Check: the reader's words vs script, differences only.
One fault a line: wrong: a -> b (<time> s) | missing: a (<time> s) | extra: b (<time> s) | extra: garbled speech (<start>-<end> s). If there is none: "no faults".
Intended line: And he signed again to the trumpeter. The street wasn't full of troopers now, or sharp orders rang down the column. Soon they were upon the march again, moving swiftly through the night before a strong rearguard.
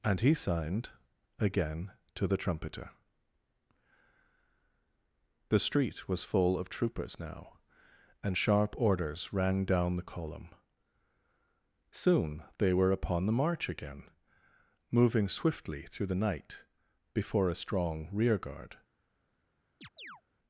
wrong: wasn't -> was (6.1 s)
wrong: or -> and (8.2 s)